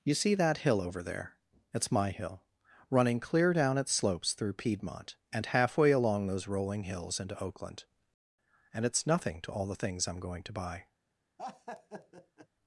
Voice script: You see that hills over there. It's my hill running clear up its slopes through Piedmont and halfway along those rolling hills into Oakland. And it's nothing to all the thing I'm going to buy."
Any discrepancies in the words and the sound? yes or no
yes